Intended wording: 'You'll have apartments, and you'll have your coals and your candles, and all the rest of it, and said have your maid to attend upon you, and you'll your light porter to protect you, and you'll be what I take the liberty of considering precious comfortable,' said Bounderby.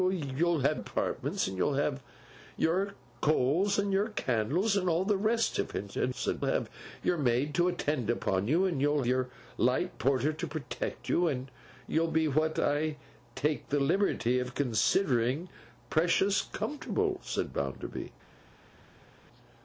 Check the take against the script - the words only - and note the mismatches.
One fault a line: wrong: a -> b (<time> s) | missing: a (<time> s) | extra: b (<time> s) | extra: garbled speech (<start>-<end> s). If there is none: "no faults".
no faults